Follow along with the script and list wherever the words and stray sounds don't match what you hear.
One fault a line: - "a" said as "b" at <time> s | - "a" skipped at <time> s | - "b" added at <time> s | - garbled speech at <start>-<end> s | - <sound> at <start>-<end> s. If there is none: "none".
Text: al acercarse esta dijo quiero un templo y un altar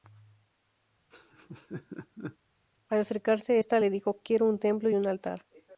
- laugh at 1.1-2.4 s
- "le" added at 3.8 s